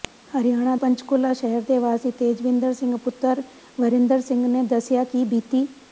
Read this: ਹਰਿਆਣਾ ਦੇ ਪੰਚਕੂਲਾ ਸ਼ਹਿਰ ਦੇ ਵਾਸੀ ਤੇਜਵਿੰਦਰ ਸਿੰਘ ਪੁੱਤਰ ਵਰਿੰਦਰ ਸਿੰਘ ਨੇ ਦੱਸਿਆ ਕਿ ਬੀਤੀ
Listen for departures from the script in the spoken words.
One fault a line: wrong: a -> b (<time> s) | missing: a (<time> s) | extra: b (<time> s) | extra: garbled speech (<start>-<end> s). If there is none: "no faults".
missing: ਦੇ (0.8 s)